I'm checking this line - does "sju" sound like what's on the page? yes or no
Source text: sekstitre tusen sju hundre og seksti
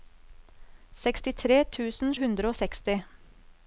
no